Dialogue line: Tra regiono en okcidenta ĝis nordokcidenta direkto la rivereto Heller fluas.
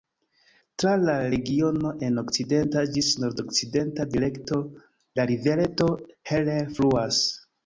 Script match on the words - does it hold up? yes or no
no